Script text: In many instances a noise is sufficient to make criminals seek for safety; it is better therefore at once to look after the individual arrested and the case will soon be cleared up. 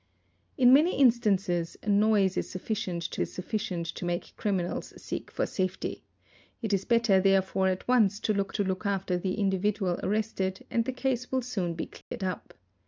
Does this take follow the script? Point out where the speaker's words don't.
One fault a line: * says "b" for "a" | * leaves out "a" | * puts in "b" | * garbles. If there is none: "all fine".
* puts in "is sufficient to"
* puts in "to look"